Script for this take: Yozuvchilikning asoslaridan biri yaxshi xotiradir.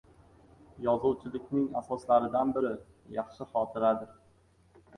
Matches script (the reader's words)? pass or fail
pass